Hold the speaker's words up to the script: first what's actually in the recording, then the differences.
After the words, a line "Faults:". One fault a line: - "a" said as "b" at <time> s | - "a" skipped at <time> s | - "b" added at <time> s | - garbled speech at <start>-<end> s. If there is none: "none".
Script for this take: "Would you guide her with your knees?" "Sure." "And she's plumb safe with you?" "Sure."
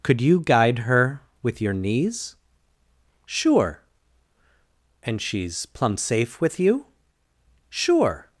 "Could you guide her with your knees?" "Sure." "And she's plumb safe with you?" "Sure."
Faults:
- "Would" said as "Could" at 0.0 s